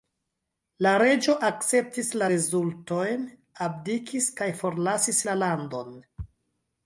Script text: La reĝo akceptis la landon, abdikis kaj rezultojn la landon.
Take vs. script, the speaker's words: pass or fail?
fail